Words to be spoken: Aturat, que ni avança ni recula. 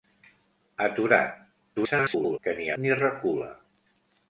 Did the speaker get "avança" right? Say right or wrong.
wrong